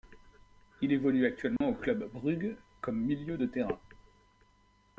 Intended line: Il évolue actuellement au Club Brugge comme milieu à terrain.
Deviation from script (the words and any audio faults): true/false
true